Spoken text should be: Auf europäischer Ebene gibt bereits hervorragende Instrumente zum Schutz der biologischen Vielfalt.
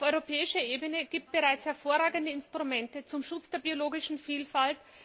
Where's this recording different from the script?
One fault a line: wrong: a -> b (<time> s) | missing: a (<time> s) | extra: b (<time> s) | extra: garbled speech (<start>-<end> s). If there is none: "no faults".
no faults